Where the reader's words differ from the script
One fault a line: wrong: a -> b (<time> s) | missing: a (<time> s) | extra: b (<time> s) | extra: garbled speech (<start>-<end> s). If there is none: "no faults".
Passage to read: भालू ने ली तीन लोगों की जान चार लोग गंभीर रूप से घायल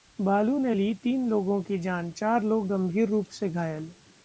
no faults